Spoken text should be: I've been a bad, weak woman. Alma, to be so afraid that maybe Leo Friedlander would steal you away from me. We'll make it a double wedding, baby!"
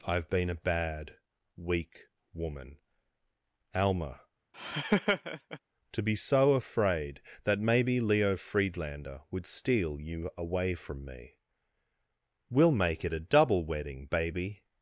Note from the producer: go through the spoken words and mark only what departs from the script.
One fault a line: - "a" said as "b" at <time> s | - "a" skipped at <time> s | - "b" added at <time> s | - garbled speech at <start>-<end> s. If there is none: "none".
none